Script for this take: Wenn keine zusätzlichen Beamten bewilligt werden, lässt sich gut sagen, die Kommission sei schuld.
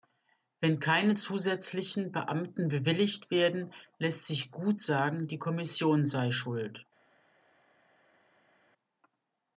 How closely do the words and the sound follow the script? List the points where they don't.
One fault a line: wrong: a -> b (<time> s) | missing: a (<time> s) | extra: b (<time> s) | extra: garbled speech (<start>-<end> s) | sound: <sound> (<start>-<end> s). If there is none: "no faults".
no faults